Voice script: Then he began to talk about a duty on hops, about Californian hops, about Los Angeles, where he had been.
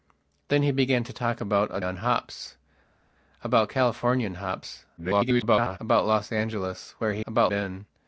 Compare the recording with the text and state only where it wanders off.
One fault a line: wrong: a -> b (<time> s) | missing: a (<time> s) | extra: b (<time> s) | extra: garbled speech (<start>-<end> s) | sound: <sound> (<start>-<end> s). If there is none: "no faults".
missing: duty (1.8 s)
extra: garbled speech (5.0-5.8 s)
wrong: had -> about (7.3 s)